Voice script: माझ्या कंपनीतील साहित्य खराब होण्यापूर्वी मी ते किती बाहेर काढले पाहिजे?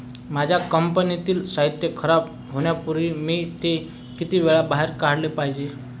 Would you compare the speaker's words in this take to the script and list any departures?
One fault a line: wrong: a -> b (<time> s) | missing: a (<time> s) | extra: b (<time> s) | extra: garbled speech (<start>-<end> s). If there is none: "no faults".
extra: वेळा (4.4 s)